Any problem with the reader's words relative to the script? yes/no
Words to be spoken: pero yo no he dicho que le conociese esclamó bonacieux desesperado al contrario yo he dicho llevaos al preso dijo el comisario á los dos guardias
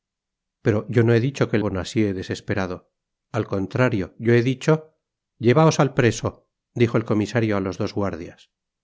yes